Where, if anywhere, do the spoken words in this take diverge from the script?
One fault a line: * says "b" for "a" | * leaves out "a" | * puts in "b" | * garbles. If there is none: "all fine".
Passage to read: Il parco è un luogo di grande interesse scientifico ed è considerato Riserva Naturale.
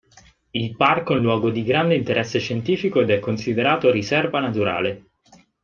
all fine